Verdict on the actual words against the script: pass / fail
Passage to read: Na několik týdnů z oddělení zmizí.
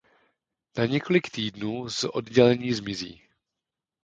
pass